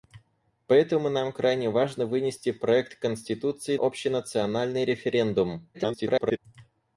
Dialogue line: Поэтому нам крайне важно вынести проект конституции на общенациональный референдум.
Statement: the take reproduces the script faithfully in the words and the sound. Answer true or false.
false